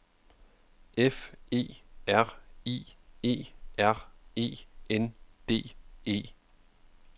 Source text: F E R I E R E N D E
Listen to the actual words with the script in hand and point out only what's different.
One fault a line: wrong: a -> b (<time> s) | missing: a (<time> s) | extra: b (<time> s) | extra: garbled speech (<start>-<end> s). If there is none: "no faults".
no faults